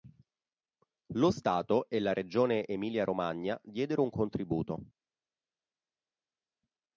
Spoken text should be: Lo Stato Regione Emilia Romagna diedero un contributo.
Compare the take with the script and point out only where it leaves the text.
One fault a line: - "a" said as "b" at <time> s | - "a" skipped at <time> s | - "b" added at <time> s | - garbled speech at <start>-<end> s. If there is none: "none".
- "e la" added at 1.9 s